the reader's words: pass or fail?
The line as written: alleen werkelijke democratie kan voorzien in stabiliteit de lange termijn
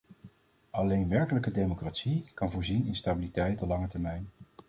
pass